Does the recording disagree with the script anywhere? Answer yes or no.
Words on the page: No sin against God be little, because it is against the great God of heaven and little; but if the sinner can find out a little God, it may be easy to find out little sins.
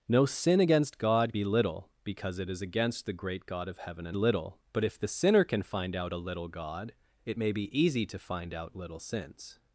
no